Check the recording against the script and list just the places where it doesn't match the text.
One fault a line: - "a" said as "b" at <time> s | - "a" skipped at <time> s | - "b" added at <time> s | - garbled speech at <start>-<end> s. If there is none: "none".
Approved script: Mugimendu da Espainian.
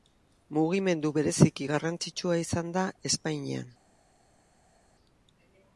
- "bereziki garrantzitsua izan" added at 1.2 s